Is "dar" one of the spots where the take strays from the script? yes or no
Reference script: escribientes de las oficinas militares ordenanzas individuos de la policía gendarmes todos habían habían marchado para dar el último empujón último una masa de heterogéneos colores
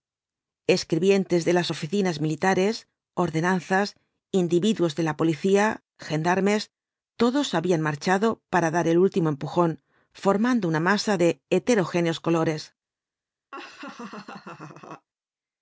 no